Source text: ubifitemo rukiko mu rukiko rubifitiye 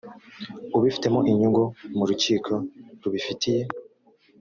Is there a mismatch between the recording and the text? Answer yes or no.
yes